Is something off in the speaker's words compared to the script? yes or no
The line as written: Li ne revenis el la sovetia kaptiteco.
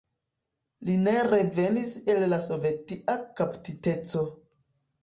no